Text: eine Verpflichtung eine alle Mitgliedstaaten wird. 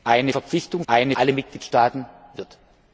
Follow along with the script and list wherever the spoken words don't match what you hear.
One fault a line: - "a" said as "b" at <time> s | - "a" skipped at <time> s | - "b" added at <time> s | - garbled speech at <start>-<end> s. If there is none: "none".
none